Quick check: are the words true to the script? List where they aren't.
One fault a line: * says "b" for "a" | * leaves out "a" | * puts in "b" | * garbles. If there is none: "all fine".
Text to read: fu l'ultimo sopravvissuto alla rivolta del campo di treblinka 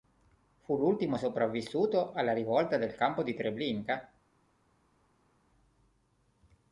all fine